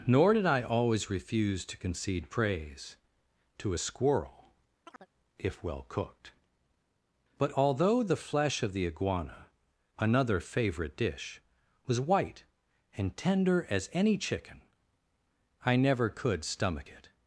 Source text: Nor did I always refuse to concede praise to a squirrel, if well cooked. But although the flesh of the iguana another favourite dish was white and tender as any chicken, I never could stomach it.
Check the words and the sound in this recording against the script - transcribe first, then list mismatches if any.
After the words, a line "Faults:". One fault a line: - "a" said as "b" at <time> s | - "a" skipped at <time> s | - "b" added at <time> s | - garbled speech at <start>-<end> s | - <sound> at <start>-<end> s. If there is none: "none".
Nor did I always refuse to concede praise to a squirrel, if well cooked. But although the flesh of the iguana another favourite dish was white and tender as any chicken, I never could stomach it.
Faults:
- chirp at 4.8-5.1 s